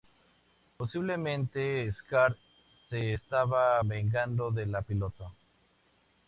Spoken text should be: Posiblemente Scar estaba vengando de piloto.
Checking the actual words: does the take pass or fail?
fail